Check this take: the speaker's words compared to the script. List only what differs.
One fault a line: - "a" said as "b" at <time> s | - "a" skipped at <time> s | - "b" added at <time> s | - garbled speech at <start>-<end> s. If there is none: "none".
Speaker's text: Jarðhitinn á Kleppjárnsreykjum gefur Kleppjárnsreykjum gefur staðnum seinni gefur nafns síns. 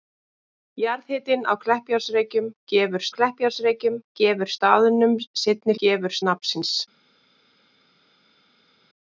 none